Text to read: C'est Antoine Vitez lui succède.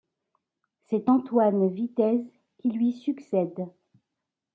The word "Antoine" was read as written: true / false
true